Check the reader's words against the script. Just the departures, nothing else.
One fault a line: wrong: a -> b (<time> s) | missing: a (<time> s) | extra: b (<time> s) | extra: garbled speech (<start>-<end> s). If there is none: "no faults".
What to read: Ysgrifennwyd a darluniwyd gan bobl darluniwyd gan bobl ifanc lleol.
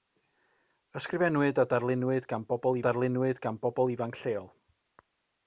no faults